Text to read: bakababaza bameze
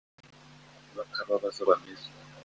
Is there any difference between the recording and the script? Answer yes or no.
no